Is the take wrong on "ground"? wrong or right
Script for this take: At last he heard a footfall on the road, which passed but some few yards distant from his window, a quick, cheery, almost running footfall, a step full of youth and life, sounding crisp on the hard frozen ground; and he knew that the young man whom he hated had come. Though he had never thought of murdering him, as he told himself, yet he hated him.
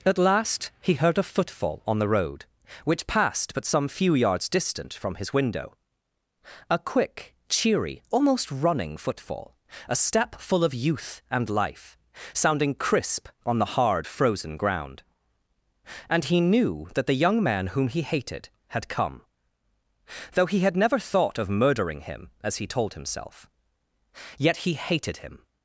right